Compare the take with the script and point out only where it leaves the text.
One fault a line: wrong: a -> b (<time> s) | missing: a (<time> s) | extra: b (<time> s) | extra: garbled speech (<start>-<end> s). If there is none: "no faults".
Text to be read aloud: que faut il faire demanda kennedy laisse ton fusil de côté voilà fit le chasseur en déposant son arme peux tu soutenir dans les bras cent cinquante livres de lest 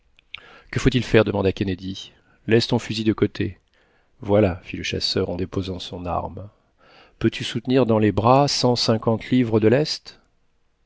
no faults